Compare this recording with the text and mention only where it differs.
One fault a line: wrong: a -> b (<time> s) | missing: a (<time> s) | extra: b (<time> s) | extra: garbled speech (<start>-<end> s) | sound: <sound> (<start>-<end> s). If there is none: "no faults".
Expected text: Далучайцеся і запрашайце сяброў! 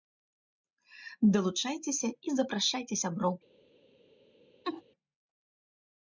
sound: laugh (4.6-4.8 s)